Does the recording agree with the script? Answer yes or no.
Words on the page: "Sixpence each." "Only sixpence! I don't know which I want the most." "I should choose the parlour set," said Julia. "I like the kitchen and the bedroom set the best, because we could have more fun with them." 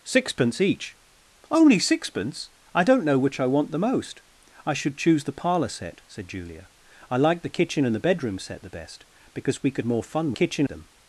no